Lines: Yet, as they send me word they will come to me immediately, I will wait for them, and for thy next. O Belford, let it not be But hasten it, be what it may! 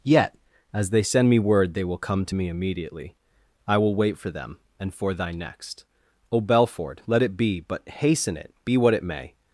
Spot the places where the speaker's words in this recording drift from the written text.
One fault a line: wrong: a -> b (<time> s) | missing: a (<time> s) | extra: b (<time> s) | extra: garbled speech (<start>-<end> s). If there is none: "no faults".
missing: not (7.4 s)